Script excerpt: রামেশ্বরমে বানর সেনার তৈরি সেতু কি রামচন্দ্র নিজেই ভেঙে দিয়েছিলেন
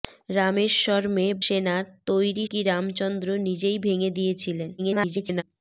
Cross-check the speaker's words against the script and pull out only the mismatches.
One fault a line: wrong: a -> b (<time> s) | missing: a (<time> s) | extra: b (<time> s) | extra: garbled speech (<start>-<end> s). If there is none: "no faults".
missing: বানর (1.3 s)
missing: সেতু (2.5 s)
extra: garbled speech (4.8-5.4 s)